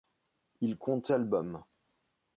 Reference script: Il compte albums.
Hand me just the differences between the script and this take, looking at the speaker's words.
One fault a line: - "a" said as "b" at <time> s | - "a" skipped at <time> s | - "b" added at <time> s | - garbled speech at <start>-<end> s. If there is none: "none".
none